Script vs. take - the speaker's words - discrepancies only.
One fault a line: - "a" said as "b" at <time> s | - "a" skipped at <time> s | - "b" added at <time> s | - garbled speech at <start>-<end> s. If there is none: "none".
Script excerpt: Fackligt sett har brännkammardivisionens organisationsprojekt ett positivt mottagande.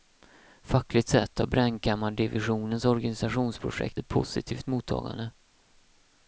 none